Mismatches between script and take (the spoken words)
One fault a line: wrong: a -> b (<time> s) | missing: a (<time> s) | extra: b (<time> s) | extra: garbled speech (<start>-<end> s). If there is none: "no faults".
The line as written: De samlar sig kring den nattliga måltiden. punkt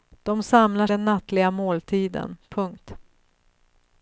missing: sig kring (0.9 s)